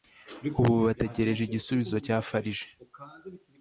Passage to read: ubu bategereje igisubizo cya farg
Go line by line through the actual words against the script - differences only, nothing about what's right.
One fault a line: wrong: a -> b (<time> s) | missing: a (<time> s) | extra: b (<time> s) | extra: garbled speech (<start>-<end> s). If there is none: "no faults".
no faults